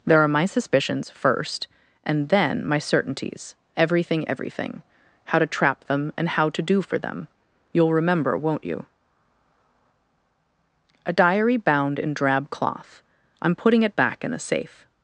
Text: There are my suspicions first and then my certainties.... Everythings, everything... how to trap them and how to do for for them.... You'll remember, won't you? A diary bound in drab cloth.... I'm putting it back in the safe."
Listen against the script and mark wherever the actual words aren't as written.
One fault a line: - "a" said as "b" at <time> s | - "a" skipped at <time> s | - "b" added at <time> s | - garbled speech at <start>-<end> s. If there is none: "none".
- "Everythings" said as "Everything" at 3.8 s
- "for" skipped at 7.0 s